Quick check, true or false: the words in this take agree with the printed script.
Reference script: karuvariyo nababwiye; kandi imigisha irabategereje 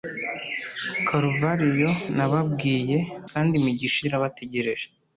true